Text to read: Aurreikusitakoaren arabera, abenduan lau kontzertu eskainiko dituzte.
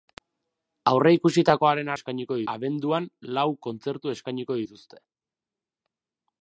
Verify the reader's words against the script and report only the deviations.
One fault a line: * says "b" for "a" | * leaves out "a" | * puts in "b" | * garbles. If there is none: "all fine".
* says "eskainiko" for "arabera"